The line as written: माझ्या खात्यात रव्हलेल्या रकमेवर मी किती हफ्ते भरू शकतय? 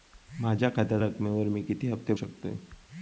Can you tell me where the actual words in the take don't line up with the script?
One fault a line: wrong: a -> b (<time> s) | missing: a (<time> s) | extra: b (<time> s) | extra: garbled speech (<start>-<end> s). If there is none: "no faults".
missing: रव्हलेल्या (1.0 s)
missing: भरू (2.1 s)